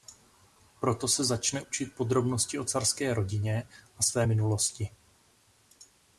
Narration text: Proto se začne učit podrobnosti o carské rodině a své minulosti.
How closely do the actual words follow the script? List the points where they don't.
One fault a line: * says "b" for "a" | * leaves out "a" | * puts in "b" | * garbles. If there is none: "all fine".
all fine